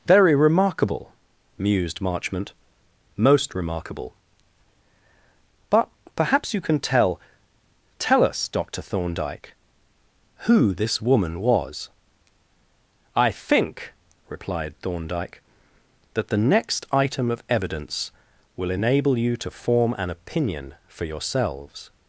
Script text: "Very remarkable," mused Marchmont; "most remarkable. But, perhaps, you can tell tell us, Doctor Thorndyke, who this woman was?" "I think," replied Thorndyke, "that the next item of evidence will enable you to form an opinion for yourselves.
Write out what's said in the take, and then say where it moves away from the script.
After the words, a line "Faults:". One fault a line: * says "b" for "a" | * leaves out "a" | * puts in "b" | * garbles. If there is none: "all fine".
"Very remarkable," mused Marchmont; "most remarkable. But, perhaps, you can tell tell us, Doctor Thorndyke, who this woman was?" "I think," replied Thorndyke, "that the next item of evidence will enable you to form an opinion for yourselves.
Faults:
all fine